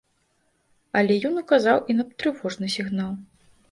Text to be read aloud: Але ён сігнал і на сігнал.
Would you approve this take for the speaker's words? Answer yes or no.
no